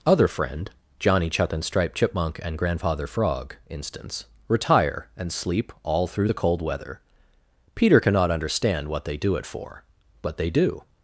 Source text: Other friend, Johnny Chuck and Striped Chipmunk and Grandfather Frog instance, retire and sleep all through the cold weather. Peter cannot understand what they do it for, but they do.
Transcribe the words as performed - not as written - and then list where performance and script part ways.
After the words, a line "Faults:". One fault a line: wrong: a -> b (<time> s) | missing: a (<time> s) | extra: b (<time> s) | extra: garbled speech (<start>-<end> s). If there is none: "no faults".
Other friend, Johnny Chuck and Striped Chipmunk and Grandfather Frog instance, retire and sleep all through the cold weather. Peter cannot understand what they do it for, but they do.
Faults:
no faults